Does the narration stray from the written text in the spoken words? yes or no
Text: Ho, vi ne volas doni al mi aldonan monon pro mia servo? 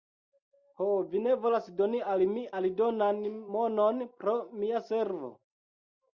no